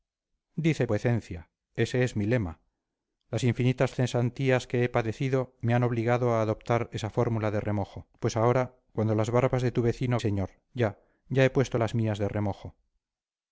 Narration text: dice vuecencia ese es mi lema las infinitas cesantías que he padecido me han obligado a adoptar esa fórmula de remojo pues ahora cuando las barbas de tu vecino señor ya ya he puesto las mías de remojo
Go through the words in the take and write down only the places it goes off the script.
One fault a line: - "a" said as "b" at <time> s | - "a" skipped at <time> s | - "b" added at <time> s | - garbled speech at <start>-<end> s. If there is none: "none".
none